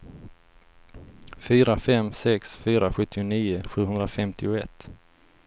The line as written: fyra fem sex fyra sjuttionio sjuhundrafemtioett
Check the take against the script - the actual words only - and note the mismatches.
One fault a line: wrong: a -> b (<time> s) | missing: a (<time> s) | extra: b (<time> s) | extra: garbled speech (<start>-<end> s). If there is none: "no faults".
no faults